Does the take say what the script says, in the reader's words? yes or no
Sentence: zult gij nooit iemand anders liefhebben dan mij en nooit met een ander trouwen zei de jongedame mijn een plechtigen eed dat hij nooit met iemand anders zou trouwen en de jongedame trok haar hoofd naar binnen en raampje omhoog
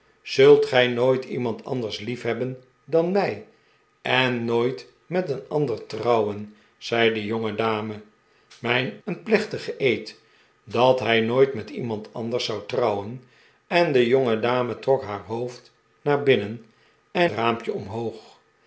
yes